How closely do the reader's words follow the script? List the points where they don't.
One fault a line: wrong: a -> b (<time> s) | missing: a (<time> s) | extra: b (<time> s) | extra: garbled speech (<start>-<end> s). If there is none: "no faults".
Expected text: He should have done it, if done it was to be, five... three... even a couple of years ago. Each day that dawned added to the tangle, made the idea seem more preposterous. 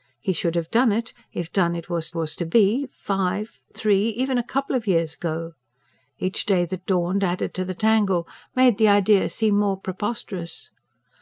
extra: was (2.1 s)